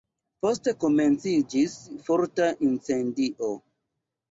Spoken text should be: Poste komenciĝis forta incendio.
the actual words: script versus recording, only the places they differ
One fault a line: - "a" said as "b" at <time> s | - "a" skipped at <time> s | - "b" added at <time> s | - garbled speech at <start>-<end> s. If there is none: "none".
none